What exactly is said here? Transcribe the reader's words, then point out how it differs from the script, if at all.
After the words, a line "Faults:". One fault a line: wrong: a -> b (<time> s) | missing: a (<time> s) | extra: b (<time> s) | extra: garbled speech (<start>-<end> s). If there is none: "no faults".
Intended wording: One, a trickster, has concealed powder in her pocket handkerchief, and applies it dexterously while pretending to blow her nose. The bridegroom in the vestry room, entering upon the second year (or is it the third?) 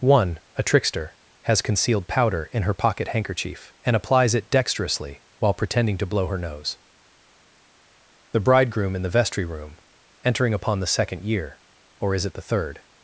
One, a trickster, has concealed powder in her pocket handkerchief, and applies it dexterously while pretending to blow her nose. The bridegroom in the vestry room, entering upon the second year (or is it the third?)
Faults:
no faults